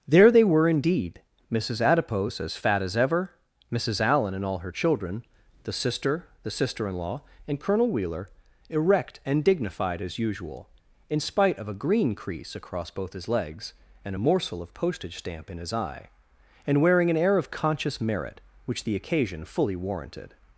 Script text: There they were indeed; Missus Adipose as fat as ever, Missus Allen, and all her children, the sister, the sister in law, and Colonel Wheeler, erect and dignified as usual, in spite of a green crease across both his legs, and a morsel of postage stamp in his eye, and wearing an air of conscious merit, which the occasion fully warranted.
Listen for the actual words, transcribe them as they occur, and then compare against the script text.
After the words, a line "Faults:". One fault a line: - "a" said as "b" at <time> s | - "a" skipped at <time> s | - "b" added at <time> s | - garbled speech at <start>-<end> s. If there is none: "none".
There they were indeed; Missus Adipose as fat as ever, Missus Allen, and all her children, the sister, the sister in law, and Colonel Wheeler, erect and dignified as usual, in spite of a green crease across both his legs, and a morsel of postage stamp in his eye, and wearing an air of conscious merit, which the occasion fully warranted.
Faults:
none